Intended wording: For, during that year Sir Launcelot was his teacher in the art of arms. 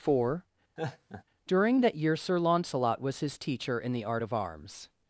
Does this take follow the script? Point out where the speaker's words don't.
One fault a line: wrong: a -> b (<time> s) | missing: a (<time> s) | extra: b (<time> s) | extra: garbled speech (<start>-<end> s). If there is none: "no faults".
no faults